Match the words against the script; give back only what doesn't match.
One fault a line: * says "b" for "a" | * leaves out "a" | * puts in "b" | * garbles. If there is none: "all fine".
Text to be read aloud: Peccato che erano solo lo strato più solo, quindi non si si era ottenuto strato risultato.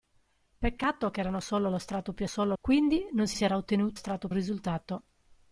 all fine